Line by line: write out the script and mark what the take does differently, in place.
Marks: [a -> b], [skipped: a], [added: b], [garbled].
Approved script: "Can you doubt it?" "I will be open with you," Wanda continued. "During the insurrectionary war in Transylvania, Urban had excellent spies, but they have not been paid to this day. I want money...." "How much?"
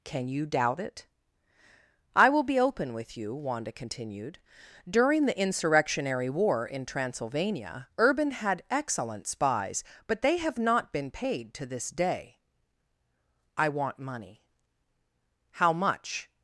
"Can you doubt it?" "I will be open with you," Wanda continued. "During the insurrectionary war in Transylvania, Urban had excellent spies, but they have not been paid to this day. I want money...." "How much?"